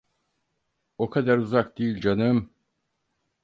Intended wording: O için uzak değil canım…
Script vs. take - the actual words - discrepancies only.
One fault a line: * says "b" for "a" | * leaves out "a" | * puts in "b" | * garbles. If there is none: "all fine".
* says "kadar" for "için"